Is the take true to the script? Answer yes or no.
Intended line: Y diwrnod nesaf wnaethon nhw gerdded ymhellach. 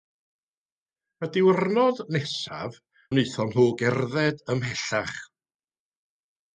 yes